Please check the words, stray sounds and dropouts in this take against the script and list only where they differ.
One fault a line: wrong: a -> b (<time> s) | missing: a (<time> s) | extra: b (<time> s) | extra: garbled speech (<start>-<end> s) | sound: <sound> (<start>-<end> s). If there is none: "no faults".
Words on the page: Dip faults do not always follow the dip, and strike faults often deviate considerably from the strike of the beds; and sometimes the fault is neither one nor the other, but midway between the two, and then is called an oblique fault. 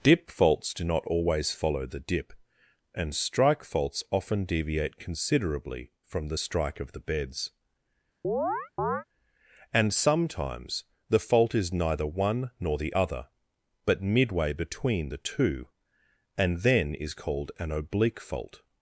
sound: chirp (8.2-9.0 s)